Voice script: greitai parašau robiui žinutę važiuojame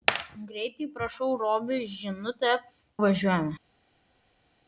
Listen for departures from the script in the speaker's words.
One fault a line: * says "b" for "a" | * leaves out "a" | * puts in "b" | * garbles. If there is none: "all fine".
all fine